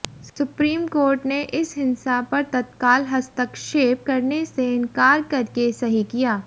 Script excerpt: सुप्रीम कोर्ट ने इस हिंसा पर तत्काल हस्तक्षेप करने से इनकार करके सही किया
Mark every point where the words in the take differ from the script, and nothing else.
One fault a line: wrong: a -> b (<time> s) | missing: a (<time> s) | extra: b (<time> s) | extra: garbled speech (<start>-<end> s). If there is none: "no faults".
no faults